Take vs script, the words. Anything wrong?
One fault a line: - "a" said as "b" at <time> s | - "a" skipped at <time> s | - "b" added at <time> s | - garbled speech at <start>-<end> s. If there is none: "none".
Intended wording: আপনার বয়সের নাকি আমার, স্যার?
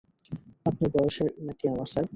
none